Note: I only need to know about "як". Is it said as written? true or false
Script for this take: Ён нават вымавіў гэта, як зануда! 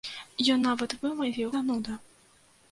false